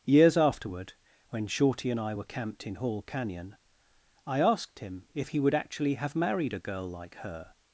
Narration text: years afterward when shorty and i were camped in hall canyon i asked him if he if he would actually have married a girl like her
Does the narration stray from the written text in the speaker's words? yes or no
yes